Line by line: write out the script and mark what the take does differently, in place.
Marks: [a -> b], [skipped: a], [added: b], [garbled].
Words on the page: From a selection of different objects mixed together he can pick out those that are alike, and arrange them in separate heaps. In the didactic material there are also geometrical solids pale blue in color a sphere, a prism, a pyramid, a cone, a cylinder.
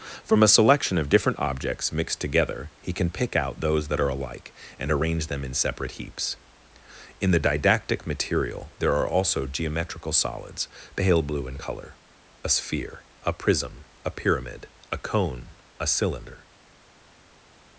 From a selection of different objects mixed together he can pick out those that are alike, and arrange them in separate heaps. In the didactic material there are also geometrical solids pale blue in color a sphere, a prism, a pyramid, a cone, a cylinder.